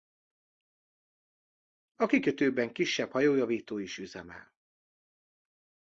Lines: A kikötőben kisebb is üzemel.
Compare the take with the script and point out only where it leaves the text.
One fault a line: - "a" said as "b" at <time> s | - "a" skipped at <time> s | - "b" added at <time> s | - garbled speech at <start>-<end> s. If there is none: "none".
- "hajójavító" added at 3.1 s